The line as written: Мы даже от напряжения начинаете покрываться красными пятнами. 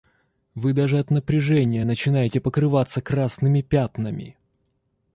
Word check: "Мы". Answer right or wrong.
wrong